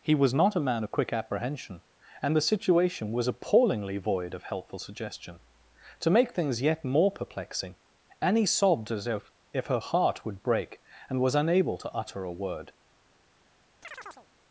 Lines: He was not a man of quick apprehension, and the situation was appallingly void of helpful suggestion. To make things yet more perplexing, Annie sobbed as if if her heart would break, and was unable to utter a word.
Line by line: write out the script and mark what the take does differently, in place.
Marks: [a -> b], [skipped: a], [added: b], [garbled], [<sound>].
He was not a man of quick apprehension, and the situation was appallingly void of helpful suggestion. To make things yet more perplexing, Annie sobbed as if if her heart would break, and was unable to utter a word. [chirp]